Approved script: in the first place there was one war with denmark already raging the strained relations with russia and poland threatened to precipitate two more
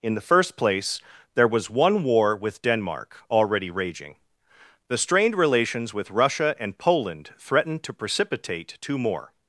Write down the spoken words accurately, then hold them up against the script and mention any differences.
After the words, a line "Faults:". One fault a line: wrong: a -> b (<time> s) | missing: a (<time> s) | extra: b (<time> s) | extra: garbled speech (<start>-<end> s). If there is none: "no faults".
in the first place there was one war with denmark already raging the strained relations with russia and poland threatened to precipitate two more
Faults:
no faults